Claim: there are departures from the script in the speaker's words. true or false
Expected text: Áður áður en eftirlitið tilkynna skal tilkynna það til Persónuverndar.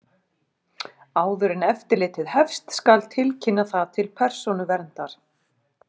true